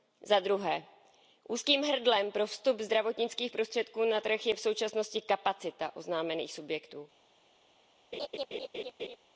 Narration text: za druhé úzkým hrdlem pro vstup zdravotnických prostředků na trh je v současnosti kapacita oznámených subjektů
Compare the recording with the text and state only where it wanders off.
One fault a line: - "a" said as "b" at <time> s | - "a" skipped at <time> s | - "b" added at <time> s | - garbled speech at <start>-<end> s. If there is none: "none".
none